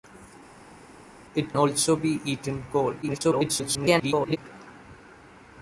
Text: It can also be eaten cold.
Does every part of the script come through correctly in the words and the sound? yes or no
no